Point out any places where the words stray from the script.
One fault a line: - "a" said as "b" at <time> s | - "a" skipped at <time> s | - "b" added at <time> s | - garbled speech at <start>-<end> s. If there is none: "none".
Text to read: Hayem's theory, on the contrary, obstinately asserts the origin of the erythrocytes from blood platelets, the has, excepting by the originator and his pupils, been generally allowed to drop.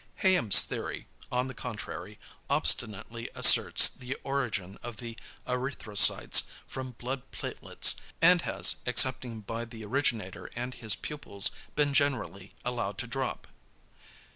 - "the" said as "and" at 8.2 s